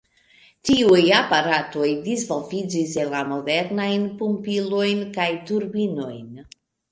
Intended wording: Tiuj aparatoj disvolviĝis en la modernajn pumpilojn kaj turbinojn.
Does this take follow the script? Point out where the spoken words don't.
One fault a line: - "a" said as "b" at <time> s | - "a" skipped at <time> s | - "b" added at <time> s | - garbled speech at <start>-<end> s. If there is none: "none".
none